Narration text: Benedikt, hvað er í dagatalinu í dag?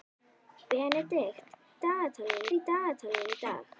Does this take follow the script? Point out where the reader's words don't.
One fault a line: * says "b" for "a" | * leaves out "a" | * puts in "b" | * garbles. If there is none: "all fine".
* says "dagatalinu" for "hvað"